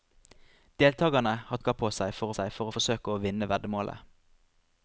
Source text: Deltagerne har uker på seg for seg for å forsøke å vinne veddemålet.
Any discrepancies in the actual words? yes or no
no